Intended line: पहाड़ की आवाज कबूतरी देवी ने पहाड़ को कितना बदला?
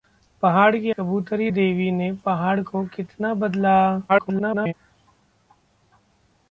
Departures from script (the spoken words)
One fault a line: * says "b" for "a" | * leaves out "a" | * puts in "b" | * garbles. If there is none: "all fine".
* leaves out "आवाज"
* garbles